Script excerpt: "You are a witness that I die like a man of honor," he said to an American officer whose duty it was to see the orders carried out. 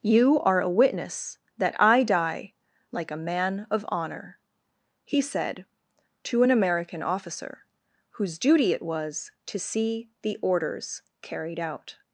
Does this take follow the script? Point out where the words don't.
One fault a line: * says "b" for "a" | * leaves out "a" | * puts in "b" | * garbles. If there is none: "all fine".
all fine